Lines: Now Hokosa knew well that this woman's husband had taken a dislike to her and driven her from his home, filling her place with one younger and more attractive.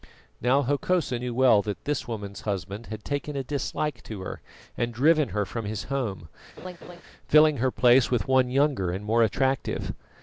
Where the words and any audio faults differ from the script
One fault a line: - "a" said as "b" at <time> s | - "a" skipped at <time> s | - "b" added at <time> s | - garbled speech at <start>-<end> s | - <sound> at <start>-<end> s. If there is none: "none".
- laugh at 6.6-7.0 s